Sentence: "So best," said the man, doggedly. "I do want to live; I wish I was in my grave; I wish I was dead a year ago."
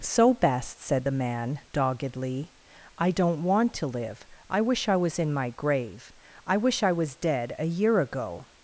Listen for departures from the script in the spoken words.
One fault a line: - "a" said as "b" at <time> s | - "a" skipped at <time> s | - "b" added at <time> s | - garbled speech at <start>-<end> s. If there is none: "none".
- "do" said as "don't" at 3.1 s